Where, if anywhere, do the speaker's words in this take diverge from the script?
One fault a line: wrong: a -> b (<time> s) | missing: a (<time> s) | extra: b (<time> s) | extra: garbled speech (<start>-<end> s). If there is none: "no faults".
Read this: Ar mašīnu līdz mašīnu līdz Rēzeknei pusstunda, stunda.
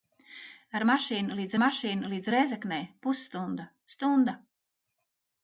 no faults